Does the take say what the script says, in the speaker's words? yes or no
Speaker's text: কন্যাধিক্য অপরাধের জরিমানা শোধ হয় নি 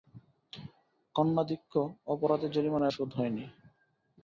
yes